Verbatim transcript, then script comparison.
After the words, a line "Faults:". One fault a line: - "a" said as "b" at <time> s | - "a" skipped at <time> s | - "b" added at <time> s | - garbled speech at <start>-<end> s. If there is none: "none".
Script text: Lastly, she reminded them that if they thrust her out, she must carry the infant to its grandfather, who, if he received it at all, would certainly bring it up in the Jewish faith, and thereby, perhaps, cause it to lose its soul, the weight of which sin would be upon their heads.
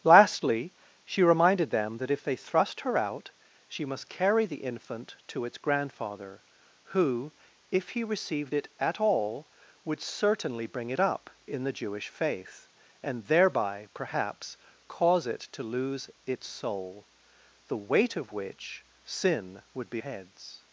Lastly, she reminded them that if they thrust her out, she must carry the infant to its grandfather, who, if he received it at all, would certainly bring it up in the Jewish faith, and thereby, perhaps, cause it to lose its soul, the weight of which sin would be heads.
Faults:
- "upon their" skipped at 20.0 s